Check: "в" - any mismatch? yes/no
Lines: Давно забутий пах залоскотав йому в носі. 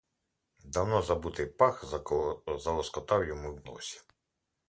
yes